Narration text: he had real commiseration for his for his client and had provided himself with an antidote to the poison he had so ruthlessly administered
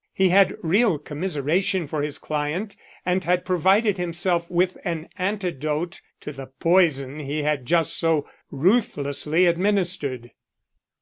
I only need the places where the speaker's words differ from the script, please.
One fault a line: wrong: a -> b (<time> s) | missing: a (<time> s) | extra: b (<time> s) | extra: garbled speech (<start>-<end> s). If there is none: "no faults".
missing: for his (2.2 s)
extra: just (7.7 s)